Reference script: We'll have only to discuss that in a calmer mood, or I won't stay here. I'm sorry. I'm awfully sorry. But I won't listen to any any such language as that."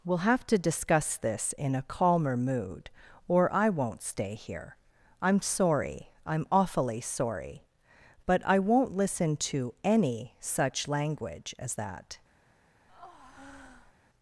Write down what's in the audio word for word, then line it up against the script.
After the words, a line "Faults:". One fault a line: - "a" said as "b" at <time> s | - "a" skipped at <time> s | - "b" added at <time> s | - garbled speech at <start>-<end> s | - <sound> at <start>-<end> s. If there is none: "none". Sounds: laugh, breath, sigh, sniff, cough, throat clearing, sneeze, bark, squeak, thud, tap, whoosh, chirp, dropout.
We'll have to discuss this in a calmer mood, or I won't stay here. I'm sorry. I'm awfully sorry. But I won't listen to any such language as that."
Faults:
- "only" skipped at 0.5 s
- "that" said as "this" at 1.1 s
- "any" skipped at 10.3 s
- breath at 12.9-13.9 s